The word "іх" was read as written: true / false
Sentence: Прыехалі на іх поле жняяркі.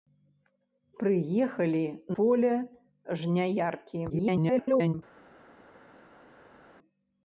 false